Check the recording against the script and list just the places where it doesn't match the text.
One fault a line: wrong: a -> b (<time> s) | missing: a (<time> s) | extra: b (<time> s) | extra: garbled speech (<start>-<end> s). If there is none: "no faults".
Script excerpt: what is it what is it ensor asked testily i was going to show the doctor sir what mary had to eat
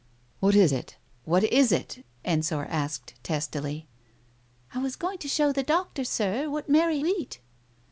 missing: had to (7.0 s)